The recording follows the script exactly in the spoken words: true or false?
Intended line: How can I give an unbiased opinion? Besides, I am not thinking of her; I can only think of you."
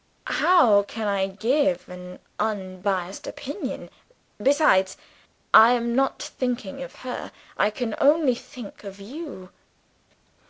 true